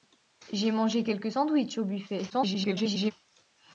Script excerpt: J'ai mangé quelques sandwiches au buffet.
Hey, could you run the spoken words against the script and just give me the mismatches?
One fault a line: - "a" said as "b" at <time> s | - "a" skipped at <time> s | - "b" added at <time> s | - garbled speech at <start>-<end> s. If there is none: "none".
- garbled speech at 2.3-3.1 s